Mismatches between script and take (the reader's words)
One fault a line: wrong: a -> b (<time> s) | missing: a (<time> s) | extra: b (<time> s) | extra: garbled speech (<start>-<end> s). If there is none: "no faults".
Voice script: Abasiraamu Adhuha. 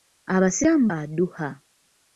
no faults